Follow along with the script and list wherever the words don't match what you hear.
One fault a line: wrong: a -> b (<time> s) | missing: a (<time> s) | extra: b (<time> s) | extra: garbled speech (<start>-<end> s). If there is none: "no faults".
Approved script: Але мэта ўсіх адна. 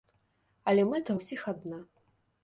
no faults